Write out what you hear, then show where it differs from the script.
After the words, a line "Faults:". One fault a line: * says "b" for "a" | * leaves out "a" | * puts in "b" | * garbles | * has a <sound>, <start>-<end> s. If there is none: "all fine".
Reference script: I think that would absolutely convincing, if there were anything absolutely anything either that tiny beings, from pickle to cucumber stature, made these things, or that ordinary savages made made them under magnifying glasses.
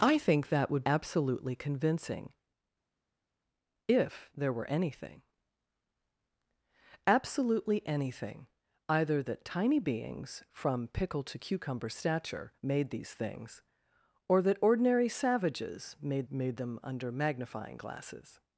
I think that would absolutely convincing, if there were anything absolutely anything either that tiny beings, from pickle to cucumber stature, made these things, or that ordinary savages made made them under magnifying glasses.
Faults:
all fine